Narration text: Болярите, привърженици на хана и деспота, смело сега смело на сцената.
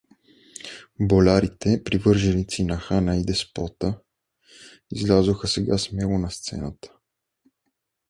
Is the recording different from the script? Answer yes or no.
yes